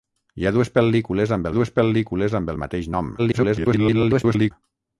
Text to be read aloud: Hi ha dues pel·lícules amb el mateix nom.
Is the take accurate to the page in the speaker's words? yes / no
no